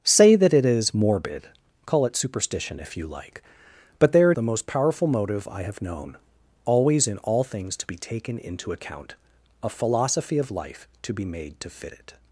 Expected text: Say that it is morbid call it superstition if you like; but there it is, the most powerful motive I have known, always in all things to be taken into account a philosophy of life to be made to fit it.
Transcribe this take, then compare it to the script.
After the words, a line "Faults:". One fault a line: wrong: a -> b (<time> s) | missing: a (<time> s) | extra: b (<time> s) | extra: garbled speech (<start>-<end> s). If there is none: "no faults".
Say that it is morbid call it superstition if you like; but there it the most powerful motive I have known, always in all things to be taken into account a philosophy of life to be made to fit it.
Faults:
missing: is (4.4 s)